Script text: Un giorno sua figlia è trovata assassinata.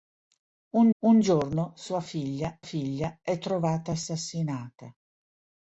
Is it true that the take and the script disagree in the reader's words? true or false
true